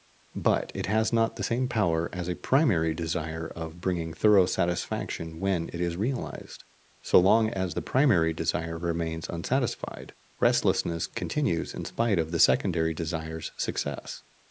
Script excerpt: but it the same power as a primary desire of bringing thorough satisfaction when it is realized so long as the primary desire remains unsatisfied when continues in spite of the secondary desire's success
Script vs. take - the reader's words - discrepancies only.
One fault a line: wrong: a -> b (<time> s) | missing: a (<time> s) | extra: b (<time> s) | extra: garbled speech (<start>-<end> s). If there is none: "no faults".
extra: has not (0.9 s)
wrong: when -> restlessness (10.4 s)